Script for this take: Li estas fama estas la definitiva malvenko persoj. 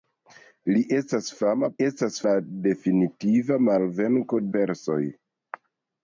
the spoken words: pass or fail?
pass